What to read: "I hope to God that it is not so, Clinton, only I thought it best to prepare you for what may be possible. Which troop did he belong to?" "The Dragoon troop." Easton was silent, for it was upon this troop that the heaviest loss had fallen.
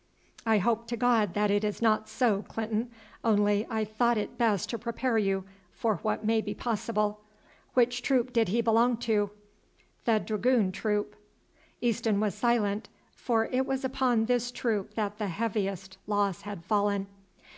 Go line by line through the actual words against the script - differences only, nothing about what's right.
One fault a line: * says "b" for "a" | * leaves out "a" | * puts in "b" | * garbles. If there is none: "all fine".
all fine